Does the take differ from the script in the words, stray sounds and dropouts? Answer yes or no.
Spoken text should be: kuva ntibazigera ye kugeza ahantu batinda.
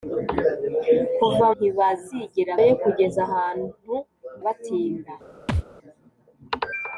yes